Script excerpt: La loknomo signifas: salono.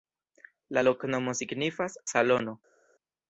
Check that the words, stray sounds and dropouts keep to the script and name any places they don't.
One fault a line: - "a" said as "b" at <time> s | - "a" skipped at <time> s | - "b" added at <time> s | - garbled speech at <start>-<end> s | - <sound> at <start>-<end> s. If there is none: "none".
none